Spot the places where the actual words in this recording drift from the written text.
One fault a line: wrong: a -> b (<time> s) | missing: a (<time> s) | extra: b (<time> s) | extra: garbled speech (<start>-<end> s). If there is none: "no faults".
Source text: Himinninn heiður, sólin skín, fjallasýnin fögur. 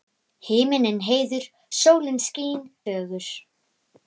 missing: fjallasýnin (2.6 s)